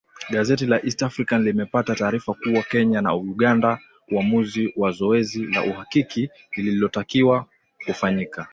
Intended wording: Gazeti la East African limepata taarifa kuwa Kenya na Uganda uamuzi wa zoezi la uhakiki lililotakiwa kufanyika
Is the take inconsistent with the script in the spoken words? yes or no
no